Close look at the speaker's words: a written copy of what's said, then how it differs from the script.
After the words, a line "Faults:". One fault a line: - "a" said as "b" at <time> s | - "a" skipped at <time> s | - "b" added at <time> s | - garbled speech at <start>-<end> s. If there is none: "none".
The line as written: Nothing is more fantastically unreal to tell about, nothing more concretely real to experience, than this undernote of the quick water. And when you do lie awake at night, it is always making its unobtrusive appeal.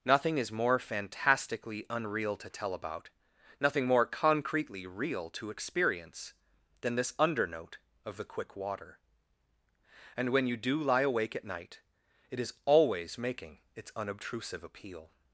Nothing is more fantastically unreal to tell about, nothing more concretely real to experience, than this undernote of the quick water. And when you do lie awake at night, it is always making its unobtrusive appeal.
Faults:
none